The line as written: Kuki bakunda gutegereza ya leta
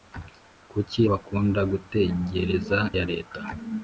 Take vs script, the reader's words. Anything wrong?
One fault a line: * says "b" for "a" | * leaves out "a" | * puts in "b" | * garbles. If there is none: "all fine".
all fine